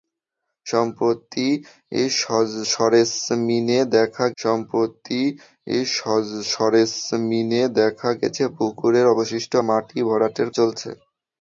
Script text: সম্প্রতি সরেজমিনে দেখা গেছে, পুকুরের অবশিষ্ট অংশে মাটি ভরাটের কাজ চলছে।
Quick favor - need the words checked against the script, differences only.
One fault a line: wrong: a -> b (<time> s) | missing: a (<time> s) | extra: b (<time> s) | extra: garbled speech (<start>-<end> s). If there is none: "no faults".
extra: সম্প্রতি সরেজমিনে দেখা (4.4 s)
missing: অংশে (9.5 s)
missing: কাজ (10.5 s)